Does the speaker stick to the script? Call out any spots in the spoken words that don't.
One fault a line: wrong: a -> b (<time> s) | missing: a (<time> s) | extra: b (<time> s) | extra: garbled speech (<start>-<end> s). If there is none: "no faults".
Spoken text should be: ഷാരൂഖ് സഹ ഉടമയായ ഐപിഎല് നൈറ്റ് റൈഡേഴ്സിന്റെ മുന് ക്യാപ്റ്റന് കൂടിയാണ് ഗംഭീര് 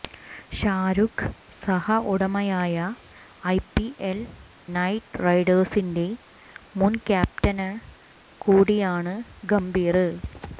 no faults